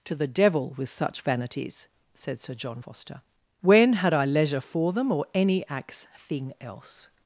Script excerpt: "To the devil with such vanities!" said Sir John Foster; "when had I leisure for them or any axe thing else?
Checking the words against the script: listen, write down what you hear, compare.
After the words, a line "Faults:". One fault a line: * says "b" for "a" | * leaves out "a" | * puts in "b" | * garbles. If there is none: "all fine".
"To the devil with such vanities!" said Sir John Foster; "when had I leisure for them or any axe thing else?
Faults:
all fine